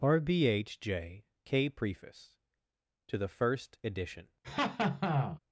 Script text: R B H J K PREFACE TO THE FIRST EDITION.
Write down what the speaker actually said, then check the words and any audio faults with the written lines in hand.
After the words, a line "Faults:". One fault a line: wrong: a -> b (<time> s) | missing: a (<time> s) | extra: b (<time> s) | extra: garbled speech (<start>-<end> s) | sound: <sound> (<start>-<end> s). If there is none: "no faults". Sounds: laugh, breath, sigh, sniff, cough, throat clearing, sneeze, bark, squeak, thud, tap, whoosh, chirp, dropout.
R B H J K PREFACE TO THE FIRST EDITION.
Faults:
sound: laugh (4.4-5.4 s)